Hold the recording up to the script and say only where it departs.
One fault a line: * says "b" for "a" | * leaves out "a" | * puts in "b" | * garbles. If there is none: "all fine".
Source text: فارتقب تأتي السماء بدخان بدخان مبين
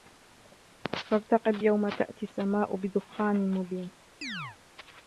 * puts in "يوم"
* leaves out "بدخان"